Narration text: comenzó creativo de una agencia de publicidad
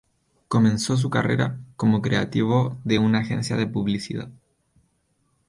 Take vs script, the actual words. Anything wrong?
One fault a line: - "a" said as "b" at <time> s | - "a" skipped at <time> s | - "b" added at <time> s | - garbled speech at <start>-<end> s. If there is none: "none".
- "su carrera como" added at 1.0 s